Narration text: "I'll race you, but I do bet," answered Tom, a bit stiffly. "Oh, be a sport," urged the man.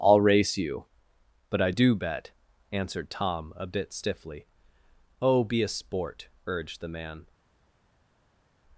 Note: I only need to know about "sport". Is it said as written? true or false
true